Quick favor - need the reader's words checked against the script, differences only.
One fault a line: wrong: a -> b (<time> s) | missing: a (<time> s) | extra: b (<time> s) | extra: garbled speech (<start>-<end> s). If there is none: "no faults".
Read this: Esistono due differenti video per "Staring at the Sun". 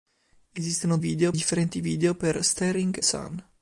wrong: due -> video (1.0 s)
missing: at the (2.9 s)